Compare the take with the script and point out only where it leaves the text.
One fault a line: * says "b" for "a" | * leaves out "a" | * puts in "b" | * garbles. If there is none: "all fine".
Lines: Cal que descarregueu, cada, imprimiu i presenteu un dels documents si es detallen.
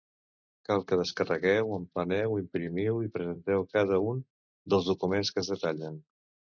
* says "empleneu" for "cada"
* puts in "cada"
* says "que" for "si"